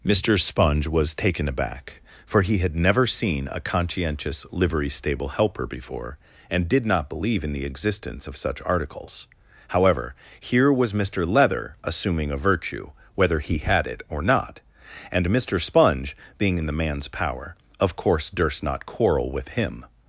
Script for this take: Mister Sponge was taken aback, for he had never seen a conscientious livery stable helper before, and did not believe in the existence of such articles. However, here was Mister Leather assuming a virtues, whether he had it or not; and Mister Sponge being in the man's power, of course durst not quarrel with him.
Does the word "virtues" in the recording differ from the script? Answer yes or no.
yes